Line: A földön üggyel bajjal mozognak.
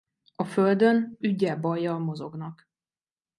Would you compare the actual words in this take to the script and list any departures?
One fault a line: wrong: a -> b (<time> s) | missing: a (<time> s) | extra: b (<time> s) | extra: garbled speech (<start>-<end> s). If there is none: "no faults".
no faults